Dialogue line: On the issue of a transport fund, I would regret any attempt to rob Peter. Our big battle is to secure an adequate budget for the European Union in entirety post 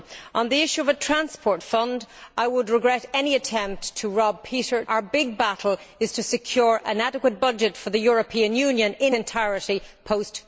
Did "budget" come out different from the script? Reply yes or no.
no